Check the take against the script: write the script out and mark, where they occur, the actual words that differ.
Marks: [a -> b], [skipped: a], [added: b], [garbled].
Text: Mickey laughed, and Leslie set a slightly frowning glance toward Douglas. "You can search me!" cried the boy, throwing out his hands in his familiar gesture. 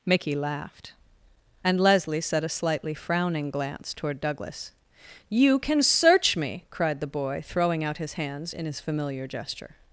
Mickey laughed, and Leslie set a slightly frowning glance toward Douglas. "You can search me!" cried the boy, throwing out his hands in his familiar gesture.